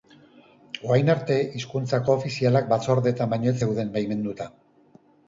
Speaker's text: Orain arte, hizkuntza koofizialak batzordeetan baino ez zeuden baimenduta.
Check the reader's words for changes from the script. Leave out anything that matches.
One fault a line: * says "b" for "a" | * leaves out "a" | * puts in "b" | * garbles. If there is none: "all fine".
all fine